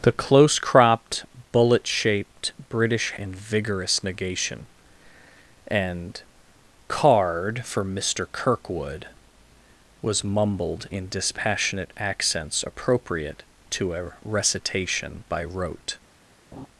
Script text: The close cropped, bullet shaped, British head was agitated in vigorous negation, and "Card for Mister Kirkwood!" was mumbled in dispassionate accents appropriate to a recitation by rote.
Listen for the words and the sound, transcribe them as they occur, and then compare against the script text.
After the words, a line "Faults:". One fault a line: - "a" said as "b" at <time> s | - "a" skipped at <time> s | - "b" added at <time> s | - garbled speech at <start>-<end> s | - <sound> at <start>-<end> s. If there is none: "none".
The close cropped, bullet shaped, British in vigorous negation, and "Card for Mister Kirkwood!" was mumbled in dispassionate accents appropriate to a recitation by rote.
Faults:
- "head was agitated" skipped at 3.1 s
- laugh at 16.5-16.7 s